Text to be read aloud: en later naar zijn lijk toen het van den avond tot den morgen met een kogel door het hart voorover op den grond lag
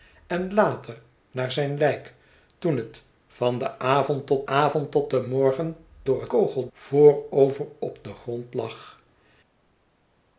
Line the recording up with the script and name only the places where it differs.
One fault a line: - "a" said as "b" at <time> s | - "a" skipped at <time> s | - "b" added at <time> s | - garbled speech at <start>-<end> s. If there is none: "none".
- "avond tot" added at 4.5 s
- "met een kogel" skipped at 5.8 s
- "hart" said as "kogel" at 6.3 s